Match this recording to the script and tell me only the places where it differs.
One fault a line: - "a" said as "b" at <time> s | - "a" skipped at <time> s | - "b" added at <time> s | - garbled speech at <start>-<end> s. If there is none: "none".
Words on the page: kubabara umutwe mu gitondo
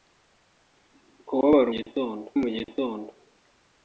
- "umutwe" said as "gitondo" at 1.7 s